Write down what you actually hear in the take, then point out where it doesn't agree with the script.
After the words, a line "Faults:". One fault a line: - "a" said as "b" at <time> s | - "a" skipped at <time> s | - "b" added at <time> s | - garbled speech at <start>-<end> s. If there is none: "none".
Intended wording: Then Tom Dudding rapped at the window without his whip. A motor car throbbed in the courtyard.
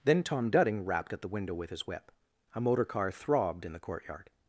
Then Tom Dudding rapped at the window with his whip. A motor car throbbed in the courtyard.
Faults:
- "without" said as "with" at 1.5 s